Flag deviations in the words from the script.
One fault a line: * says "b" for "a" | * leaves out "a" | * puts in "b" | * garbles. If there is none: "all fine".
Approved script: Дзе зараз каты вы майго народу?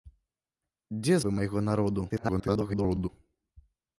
* leaves out "зараз каты"
* garbles